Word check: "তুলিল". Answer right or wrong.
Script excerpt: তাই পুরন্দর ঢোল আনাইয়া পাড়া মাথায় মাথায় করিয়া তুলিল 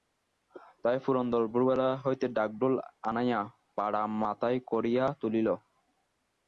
right